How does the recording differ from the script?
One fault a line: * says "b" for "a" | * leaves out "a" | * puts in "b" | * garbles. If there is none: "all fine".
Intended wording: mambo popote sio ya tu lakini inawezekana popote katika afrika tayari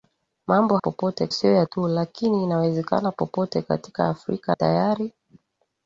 all fine